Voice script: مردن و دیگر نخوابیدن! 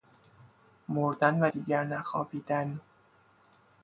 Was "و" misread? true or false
false